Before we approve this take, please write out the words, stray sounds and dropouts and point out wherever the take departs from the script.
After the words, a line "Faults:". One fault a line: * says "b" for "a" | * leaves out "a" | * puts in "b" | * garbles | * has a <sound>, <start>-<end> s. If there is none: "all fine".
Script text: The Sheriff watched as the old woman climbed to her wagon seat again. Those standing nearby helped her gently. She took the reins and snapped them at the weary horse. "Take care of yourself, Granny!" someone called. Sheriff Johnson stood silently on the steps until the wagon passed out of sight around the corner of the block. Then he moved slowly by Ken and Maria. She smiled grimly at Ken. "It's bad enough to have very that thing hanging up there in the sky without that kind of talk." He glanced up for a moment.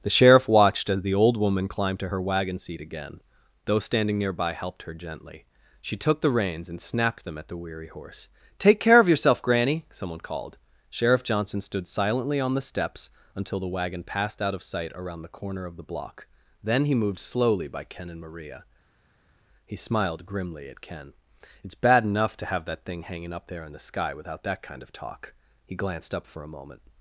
The Sheriff watched as the old woman climbed to her wagon seat again. Those standing nearby helped her gently. She took the reins and snapped them at the weary horse. "Take care of yourself, Granny!" someone called. Sheriff Johnson stood silently on the steps until the wagon passed out of sight around the corner of the block. Then he moved slowly by Ken and Maria. He smiled grimly at Ken. "It's bad enough to have that thing hanging up there in the sky without that kind of talk." He glanced up for a moment.
Faults:
* says "He" for "She"
* leaves out "very"